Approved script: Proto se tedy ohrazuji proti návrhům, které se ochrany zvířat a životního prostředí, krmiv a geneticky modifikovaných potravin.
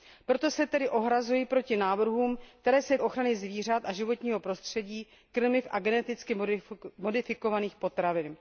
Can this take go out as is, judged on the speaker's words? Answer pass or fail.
pass